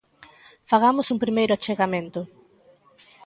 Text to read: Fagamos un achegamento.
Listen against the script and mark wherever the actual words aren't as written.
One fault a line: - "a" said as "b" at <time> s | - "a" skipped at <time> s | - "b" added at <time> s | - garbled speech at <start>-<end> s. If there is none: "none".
- "primeiro" added at 1.2 s